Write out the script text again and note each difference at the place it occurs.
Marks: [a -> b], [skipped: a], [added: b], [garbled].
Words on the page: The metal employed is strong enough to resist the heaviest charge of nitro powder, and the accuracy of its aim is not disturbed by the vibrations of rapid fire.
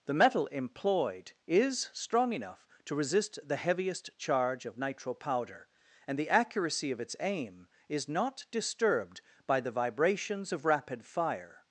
The metal employed is strong enough to resist the heaviest charge of nitro powder, and the accuracy of its aim is not disturbed by the vibrations of rapid fire.